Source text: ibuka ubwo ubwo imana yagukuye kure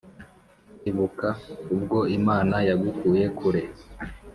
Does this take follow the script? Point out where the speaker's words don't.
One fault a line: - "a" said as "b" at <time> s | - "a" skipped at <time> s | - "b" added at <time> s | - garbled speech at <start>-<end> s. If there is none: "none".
- "ubwo" skipped at 2.0 s